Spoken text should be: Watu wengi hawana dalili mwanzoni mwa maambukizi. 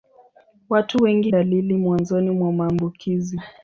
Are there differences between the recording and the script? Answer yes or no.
yes